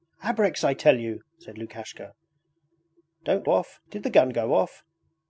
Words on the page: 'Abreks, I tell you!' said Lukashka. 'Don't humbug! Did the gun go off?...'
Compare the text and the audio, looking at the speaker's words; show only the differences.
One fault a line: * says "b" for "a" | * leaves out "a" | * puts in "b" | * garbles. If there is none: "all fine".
* says "off" for "humbug"